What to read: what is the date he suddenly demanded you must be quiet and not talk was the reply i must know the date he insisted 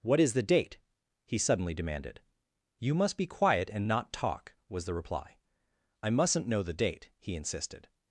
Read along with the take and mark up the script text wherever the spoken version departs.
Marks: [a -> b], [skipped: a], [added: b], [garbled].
what is the date he suddenly demanded you must be quiet and not talk was the reply i [must -> mustn't] know the date he insisted